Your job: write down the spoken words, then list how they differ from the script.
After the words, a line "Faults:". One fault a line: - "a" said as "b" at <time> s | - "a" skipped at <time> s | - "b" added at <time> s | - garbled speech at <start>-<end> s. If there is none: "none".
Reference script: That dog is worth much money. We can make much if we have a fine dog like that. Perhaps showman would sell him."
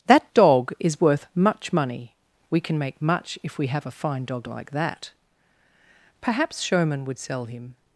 That dog is worth much money. We can make much if we have a fine dog like that. Perhaps showman would sell him."
Faults:
none